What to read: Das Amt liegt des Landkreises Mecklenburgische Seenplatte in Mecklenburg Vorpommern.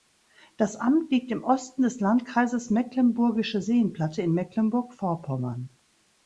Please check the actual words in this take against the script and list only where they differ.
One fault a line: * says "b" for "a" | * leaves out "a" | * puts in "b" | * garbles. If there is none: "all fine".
* puts in "im Osten"